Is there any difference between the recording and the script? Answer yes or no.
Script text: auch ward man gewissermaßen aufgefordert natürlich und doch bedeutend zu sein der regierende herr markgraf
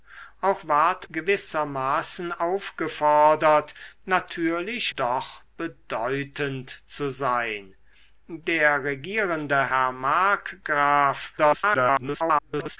yes